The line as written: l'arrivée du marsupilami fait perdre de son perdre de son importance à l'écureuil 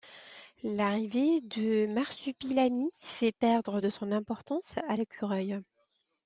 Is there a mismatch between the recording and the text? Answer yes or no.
yes